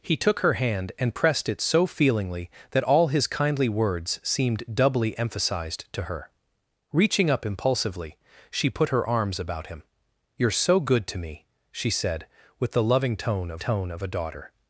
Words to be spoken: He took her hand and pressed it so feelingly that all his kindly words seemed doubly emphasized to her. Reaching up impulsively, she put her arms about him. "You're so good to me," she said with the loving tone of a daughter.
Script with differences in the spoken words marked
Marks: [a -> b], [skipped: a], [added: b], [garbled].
He took her hand and pressed it so feelingly that all his kindly words seemed doubly emphasized to her. Reaching up impulsively, she put her arms about him. "You're so good to me," she said with the loving tone of [added: tone of] a daughter.